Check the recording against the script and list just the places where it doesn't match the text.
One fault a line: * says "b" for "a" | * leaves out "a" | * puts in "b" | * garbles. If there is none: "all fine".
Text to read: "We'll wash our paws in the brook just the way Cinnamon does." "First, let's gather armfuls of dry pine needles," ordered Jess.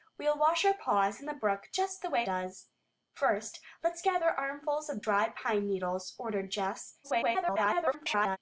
* leaves out "Cinnamon"
* garbles